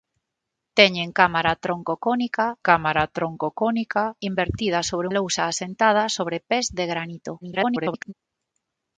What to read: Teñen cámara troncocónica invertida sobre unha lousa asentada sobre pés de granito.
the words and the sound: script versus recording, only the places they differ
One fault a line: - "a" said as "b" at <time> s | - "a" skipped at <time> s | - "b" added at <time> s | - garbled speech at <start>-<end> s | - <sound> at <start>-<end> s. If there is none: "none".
- "cámara troncocónica" added at 2.7 s
- "unha" skipped at 5.1 s
- garbled speech at 7.4-8.1 s